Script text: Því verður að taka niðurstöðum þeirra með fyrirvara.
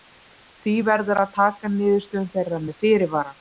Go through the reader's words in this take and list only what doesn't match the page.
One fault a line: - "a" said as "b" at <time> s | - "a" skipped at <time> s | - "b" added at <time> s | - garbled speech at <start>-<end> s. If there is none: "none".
none